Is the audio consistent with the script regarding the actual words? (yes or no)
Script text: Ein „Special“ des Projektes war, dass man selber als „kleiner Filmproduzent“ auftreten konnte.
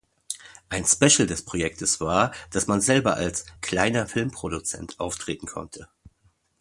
yes